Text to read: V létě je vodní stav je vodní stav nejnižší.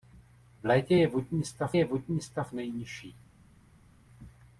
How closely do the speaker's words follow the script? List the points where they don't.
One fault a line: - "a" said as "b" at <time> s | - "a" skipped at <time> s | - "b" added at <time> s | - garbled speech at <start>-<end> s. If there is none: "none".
none